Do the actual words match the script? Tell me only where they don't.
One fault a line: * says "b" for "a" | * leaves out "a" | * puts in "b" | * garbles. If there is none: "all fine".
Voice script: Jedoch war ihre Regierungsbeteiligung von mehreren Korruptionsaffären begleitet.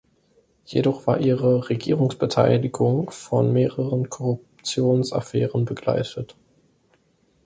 all fine